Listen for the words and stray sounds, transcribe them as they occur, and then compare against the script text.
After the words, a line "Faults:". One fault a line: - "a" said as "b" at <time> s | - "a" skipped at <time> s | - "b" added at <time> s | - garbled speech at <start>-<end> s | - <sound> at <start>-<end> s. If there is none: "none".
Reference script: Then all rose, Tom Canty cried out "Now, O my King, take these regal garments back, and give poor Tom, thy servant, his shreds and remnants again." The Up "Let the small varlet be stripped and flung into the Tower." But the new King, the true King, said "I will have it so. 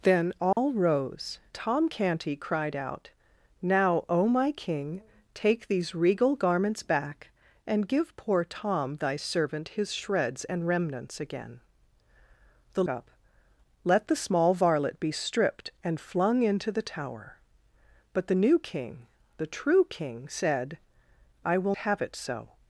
Then all rose, Tom Canty cried out "Now, O my King, take these regal garments back, and give poor Tom, thy servant, his shreds and remnants again." The Up "Let the small varlet be stripped and flung into the Tower." But the new King, the true King, said "I will have it so.
Faults:
- dropout at 0.5-0.6 s